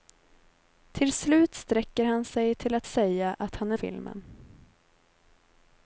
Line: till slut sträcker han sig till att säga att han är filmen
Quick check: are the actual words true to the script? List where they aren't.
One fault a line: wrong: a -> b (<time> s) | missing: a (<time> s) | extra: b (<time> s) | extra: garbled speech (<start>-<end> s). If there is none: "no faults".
no faults